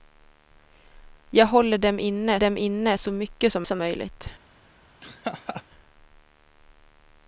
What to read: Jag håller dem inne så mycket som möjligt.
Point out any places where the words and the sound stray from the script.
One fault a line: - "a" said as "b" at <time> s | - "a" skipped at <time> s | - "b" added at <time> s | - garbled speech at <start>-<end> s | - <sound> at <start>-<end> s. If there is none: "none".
- "dem inne" added at 2.4 s
- "som" added at 3.7 s
- laugh at 5.0-5.6 s